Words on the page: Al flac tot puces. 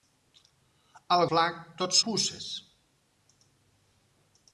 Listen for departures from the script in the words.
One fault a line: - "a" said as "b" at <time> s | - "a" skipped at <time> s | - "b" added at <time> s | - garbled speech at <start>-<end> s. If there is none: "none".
none